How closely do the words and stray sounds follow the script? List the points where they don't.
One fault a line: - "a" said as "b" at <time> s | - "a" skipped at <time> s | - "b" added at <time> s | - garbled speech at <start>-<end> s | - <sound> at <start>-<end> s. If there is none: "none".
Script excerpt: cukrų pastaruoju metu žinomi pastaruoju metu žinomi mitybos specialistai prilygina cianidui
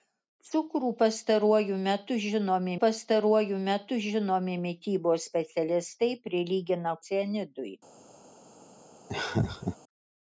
- laugh at 9.1-9.8 s